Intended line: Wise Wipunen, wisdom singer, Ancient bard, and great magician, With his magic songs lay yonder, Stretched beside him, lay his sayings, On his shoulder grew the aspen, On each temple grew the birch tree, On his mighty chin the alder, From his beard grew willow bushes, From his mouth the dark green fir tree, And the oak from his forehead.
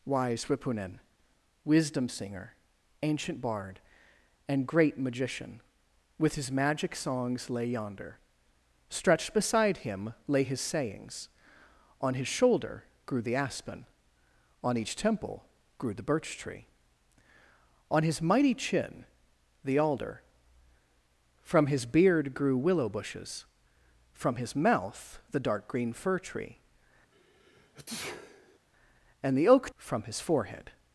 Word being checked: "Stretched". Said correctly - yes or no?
yes